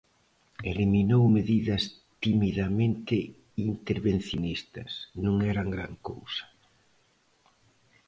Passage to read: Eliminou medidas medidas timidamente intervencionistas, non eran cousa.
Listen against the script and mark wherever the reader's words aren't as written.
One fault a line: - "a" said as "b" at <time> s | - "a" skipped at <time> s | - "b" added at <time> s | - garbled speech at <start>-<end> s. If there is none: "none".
- "medidas" skipped at 1.8 s
- "gran" added at 5.8 s